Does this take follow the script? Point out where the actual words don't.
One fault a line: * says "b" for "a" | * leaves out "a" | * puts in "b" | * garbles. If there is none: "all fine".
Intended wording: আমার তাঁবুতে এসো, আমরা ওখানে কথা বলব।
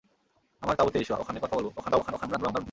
* leaves out "আমরা"
* garbles